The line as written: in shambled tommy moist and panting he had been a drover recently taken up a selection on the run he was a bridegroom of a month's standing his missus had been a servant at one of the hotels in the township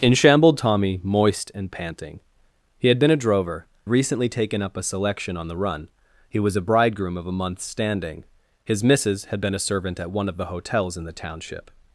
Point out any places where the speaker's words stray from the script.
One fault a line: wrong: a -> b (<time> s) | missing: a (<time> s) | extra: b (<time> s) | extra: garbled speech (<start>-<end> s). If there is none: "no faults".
no faults